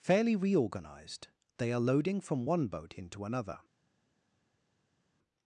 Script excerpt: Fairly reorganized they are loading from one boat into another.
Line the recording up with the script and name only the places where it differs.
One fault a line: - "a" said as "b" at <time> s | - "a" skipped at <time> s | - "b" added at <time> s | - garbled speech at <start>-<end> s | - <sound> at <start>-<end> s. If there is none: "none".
none